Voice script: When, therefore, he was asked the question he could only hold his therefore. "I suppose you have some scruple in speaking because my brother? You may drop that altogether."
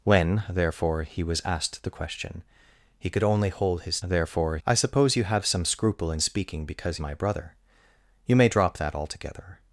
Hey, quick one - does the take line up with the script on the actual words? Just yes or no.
yes